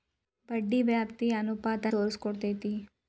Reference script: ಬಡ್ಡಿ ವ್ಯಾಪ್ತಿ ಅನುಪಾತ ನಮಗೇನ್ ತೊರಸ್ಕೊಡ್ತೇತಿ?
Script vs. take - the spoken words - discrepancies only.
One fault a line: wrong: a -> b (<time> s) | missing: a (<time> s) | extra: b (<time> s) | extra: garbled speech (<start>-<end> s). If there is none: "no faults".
missing: ನಮಗೇನ್ (1.9 s)